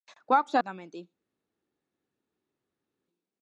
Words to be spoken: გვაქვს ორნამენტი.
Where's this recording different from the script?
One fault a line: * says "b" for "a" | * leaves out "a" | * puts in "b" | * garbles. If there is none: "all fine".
all fine